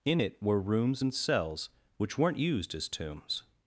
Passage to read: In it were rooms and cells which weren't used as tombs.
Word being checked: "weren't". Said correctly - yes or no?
yes